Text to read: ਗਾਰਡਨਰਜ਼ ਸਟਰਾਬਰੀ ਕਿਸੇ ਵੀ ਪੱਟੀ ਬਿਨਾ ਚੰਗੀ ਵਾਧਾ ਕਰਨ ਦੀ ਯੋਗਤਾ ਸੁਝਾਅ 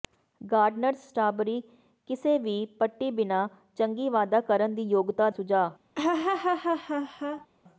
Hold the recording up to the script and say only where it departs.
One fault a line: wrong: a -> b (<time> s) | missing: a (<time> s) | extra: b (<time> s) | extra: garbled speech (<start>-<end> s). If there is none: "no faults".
no faults